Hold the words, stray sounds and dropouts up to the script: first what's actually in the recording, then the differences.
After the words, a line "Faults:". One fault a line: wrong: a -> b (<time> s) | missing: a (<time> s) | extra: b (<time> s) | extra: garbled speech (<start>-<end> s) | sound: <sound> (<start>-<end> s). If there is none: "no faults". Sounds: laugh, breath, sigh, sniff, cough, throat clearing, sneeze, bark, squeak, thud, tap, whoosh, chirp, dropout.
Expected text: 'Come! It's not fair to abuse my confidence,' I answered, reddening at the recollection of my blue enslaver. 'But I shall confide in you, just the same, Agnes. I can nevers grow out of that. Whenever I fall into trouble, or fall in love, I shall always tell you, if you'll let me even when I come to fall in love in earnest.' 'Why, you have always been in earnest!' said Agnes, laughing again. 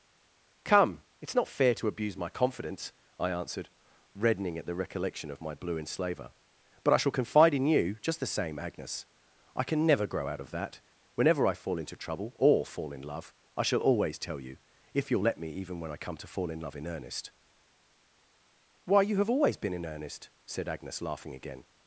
'Come! It's not fair to abuse my confidence,' I answered, reddening at the recollection of my blue enslaver. 'But I shall confide in you, just the same, Agnes. I can never grow out of that. Whenever I fall into trouble, or fall in love, I shall always tell you, if you'll let me even when I come to fall in love in earnest.' 'Why, you have always been in earnest!' said Agnes, laughing again.
Faults:
wrong: nevers -> never (9.9 s)